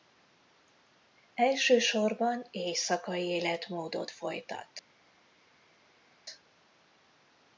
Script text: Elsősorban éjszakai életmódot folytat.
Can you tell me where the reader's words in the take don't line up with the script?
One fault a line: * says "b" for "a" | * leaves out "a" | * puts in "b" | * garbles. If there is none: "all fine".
all fine